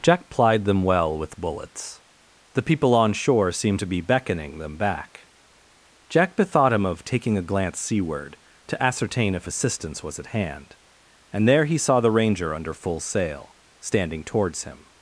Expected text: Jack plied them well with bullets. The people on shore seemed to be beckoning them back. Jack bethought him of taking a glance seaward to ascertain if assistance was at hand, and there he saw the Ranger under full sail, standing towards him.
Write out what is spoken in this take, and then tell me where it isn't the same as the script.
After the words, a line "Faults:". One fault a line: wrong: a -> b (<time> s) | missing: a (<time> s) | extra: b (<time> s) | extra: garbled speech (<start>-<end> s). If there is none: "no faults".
Jack plied them well with bullets. The people on shore seemed to be beckoning them back. Jack bethought him of taking a glance seaward to ascertain if assistance was at hand, and there he saw the Ranger under full sail, standing towards him.
Faults:
no faults